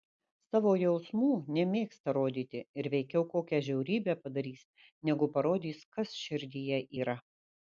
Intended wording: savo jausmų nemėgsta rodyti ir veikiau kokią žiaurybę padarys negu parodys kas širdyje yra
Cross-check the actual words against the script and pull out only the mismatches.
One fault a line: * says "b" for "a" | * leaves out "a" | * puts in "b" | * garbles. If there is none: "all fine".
all fine